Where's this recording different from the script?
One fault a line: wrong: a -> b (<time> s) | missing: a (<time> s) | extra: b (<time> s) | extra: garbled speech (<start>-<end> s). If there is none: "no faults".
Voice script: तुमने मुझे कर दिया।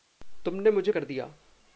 no faults